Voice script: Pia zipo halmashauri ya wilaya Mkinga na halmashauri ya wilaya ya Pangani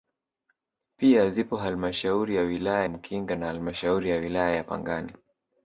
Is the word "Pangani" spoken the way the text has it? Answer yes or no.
yes